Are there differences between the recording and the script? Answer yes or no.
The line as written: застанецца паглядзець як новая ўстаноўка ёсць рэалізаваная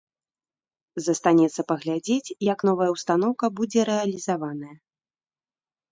yes